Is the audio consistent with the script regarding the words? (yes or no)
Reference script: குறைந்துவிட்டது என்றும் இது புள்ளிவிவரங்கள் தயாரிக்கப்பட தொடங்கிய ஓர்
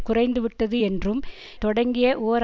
no